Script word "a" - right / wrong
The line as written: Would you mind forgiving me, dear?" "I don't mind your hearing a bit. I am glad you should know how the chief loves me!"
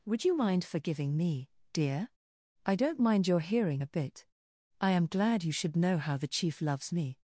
right